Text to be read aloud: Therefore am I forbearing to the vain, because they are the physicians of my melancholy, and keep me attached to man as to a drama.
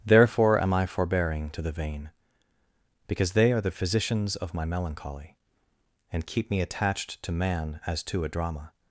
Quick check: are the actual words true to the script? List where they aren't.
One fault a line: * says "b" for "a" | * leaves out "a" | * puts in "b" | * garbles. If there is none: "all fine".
all fine